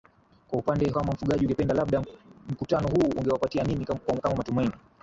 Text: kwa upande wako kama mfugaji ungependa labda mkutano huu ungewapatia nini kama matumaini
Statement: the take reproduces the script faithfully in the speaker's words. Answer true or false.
false